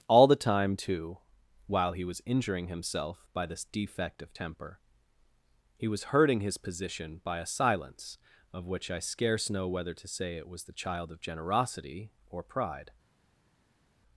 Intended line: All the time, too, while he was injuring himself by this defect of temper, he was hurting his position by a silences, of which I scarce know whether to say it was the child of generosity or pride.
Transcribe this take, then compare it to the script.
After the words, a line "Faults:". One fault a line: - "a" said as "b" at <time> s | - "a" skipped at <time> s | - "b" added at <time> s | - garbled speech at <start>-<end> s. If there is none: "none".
All the time, too, while he was injuring himself by this defect of temper, he was hurting his position by a silence, of which I scarce know whether to say it was the child of generosity or pride.
Faults:
- "silences" said as "silence" at 7.5 s